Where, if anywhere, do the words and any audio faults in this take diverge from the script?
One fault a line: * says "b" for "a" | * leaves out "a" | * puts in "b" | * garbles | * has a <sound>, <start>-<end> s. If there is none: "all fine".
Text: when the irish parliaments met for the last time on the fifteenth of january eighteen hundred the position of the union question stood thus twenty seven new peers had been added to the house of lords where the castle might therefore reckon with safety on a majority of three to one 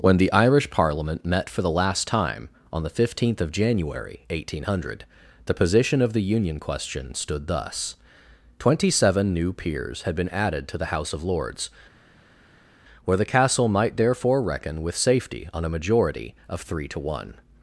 * says "parliament" for "parliaments"